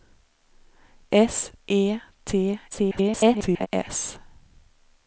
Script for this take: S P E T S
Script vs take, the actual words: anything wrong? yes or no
yes